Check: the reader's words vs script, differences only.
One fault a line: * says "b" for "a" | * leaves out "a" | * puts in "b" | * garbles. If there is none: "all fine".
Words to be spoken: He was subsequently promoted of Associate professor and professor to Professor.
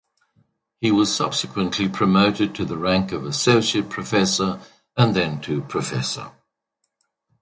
* puts in "to the rank"
* says "then" for "professor"